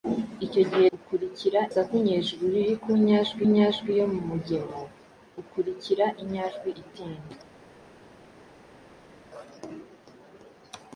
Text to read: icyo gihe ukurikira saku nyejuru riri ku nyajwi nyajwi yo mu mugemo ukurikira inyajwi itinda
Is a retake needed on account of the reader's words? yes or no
no